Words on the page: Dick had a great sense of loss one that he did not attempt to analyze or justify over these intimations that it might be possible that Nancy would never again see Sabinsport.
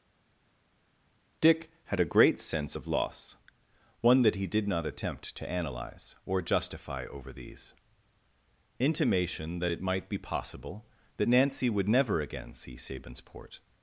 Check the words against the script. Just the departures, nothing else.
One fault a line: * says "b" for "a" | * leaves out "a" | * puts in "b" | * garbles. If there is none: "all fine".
* says "intimation" for "intimations"